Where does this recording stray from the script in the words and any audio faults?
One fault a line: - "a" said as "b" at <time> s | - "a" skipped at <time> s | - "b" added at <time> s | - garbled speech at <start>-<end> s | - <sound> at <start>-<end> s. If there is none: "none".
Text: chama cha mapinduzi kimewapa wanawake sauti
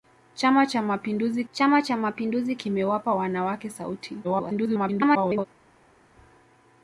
- "chama cha mapinduzi" added at 1.5 s
- garbled speech at 4.2-5.5 s